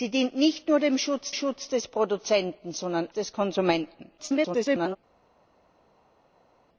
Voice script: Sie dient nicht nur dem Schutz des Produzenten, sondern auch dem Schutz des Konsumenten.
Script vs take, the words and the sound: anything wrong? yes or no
yes